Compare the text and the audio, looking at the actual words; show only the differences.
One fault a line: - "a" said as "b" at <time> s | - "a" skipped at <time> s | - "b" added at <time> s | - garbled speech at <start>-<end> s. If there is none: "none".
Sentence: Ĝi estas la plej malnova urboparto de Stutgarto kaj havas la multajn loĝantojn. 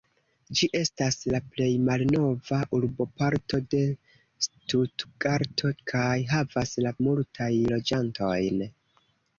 none